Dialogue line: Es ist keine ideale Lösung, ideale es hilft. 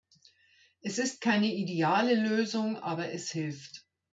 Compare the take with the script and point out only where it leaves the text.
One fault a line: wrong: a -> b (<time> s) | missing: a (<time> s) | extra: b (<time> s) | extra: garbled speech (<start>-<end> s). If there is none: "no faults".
wrong: ideale -> aber (2.8 s)